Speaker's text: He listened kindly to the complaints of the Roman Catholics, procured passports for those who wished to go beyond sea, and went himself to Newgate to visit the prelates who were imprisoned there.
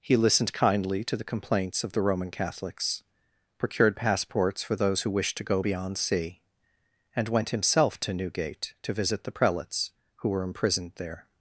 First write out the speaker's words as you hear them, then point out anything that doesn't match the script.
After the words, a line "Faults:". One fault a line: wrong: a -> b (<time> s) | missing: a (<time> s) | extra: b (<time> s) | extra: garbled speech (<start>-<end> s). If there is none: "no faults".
He listened kindly to the complaints of the Roman Catholics, procured passports for those who wished to go beyond sea, and went himself to Newgate to visit the prelates who were imprisoned there.
Faults:
no faults